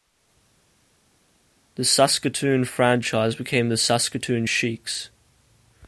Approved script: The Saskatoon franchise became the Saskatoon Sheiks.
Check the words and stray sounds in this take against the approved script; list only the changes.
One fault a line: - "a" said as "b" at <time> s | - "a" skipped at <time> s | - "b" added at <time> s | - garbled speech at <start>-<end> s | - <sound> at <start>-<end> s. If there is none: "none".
none